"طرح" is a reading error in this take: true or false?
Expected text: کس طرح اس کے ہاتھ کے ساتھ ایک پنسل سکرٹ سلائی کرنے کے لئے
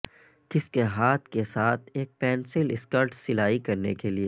true